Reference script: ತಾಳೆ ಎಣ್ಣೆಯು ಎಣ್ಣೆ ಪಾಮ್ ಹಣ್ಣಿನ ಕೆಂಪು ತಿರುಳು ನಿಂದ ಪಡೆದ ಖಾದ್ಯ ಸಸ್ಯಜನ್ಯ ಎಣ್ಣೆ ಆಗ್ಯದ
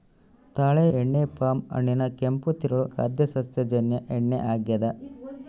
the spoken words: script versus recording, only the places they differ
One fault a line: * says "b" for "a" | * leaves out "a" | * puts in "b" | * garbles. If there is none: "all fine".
* leaves out "ಎಣ್ಣೆಯು"
* leaves out "ನಿಂದ ಪಡೆದ"